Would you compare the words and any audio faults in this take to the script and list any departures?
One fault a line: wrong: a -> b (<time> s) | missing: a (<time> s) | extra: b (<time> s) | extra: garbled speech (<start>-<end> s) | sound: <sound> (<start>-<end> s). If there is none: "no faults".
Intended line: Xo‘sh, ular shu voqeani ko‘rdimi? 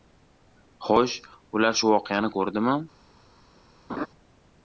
sound: laugh (3.9-4.1 s)